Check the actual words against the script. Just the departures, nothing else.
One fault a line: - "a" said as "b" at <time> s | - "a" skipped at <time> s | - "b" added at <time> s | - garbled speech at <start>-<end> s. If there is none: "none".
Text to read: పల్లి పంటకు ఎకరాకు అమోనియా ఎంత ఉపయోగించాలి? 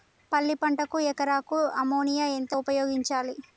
none